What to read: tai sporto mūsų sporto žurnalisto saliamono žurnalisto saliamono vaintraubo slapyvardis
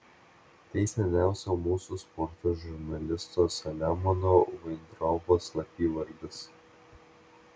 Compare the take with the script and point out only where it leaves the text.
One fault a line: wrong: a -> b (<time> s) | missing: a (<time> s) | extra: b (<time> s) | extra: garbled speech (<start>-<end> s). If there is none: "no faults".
wrong: sporto -> seniausio (0.9 s)
missing: žurnalisto saliamono (4.3 s)